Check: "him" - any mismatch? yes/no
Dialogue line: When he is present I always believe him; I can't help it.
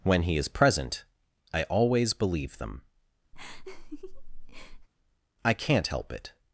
yes